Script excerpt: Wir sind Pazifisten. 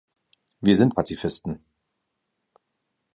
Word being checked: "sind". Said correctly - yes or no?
yes